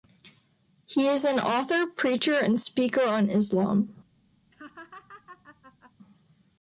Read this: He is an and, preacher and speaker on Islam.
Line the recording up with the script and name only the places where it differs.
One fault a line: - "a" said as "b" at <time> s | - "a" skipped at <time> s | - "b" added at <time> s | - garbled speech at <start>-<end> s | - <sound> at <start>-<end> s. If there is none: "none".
- "and" said as "author" at 1.4 s
- laugh at 4.5-5.9 s